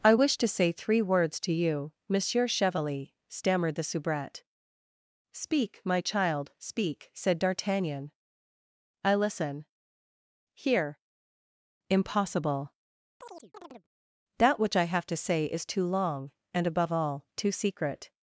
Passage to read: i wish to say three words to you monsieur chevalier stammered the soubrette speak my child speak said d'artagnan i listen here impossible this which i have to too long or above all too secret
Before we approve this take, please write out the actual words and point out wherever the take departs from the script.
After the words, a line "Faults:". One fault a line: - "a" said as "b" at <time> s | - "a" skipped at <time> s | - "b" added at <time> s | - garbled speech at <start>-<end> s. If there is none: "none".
i wish to say three words to you monsieur chevalier stammered the soubrette speak my child speak said d'artagnan i listen here impossible that which i have to say is too long and above all too secret
Faults:
- "this" said as "that" at 14.4 s
- "say is" added at 15.2 s
- "or" said as "and" at 16.5 s